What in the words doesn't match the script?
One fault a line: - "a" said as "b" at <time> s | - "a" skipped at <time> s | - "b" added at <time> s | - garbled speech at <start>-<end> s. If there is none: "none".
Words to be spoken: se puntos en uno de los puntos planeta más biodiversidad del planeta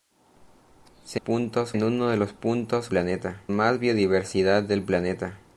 none